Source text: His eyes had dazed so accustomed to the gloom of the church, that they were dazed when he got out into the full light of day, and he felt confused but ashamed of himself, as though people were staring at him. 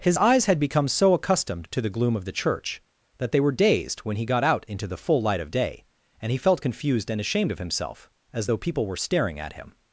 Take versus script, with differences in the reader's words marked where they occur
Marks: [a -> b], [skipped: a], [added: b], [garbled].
His eyes had [dazed -> become] so accustomed to the gloom of the church, that they were dazed when he got out into the full light of day, and he felt confused [but -> and] ashamed of himself, as though people were staring at him.